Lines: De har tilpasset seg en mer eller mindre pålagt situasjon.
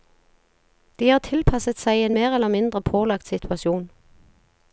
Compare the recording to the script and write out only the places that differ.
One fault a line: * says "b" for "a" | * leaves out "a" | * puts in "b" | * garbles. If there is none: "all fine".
all fine